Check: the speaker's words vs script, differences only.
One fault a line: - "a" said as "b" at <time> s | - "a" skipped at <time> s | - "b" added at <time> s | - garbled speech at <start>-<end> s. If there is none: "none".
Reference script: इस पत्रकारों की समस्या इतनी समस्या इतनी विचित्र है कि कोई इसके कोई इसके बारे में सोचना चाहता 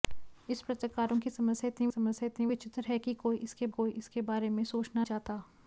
none